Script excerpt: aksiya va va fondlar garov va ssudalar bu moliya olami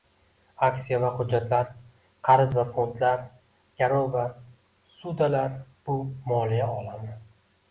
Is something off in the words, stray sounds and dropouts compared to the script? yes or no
yes